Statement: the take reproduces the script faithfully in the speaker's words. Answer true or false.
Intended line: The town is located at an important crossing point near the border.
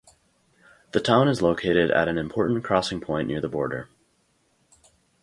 true